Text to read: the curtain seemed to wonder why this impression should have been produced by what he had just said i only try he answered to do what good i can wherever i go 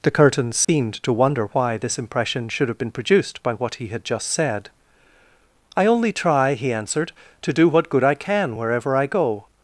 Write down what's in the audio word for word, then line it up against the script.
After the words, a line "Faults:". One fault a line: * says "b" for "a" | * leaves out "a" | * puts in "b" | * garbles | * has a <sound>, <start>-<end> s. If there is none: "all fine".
the curtain seemed to wonder why this impression should have been produced by what he had just said i only try he answered to do what good i can wherever i go
Faults:
* has a dropout, 0.6-0.7 s